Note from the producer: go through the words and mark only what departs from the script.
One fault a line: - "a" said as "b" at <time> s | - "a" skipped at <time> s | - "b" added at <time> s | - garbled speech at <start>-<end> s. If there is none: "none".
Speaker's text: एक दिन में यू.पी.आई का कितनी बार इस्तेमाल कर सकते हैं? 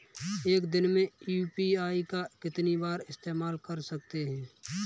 none